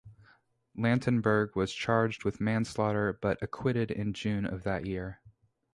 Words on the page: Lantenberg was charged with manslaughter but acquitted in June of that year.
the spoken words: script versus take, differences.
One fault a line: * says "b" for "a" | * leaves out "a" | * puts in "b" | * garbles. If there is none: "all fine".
all fine